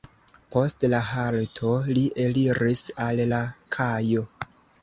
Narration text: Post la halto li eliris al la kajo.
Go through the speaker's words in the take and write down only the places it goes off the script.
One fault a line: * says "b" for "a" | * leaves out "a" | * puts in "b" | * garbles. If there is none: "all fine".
all fine